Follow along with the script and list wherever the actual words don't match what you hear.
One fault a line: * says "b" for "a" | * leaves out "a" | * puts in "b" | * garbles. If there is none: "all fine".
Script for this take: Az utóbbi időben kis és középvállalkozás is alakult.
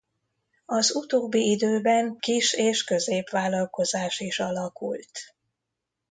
all fine